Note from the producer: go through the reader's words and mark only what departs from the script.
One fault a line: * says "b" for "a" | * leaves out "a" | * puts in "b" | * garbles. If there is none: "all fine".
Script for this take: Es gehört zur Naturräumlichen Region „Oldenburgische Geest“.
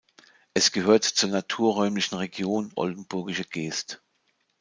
all fine